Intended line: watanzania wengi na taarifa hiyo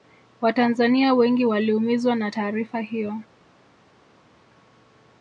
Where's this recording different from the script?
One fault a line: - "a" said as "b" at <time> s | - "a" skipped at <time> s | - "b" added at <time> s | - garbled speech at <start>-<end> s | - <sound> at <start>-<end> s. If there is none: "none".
- "waliumizwa" added at 1.4 s